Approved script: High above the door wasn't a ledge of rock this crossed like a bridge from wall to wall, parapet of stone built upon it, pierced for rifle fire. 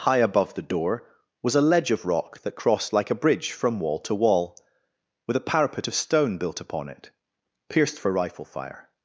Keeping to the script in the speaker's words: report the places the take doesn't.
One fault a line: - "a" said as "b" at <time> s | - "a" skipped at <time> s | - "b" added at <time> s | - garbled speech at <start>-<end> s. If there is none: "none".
- "wasn't" said as "was" at 1.4 s
- "this" said as "that" at 2.4 s
- "with a" added at 5.3 s